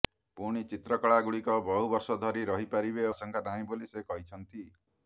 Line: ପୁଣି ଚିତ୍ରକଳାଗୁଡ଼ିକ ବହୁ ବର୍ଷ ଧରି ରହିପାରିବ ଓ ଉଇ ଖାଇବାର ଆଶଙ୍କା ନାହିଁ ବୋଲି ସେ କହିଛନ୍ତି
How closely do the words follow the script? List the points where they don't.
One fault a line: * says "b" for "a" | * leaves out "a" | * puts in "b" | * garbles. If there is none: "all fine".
* leaves out "ଓ ଉଇ ଖାଇବାର"